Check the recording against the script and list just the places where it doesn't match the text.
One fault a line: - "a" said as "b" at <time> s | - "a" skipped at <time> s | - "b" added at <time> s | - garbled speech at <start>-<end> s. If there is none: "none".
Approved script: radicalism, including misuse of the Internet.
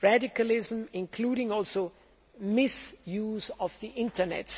none